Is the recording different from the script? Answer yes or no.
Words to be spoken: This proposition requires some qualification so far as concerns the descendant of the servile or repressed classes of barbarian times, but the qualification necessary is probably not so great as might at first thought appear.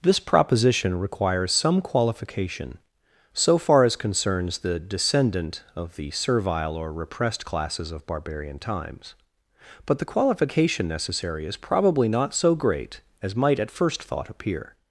no